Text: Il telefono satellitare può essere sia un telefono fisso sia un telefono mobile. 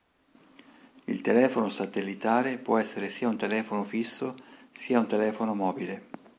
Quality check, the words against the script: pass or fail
pass